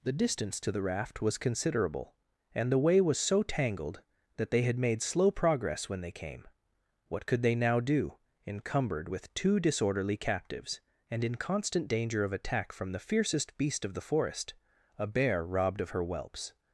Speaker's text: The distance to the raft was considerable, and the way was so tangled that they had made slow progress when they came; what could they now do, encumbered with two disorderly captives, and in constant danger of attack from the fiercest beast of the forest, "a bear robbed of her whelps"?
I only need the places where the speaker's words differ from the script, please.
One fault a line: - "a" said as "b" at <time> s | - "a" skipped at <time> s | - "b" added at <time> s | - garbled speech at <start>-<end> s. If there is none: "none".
none